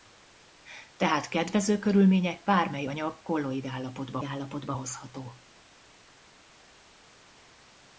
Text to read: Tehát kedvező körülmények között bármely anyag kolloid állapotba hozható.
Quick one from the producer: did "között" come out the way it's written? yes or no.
no